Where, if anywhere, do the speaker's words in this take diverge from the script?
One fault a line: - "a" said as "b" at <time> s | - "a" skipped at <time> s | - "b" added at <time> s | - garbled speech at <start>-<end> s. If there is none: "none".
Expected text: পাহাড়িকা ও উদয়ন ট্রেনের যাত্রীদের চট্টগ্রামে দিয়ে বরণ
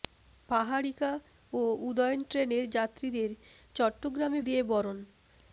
none